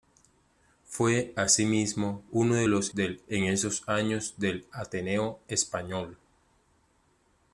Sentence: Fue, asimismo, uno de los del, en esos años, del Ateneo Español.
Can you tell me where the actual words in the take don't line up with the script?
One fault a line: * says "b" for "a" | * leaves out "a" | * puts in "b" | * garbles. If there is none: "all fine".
all fine